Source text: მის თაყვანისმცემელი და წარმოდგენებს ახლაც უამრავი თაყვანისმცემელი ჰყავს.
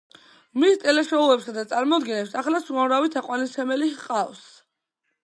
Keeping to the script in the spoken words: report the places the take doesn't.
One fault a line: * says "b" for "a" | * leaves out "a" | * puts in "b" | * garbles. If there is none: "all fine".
* says "ტელეშოუებსა" for "თაყვანისმცემელი"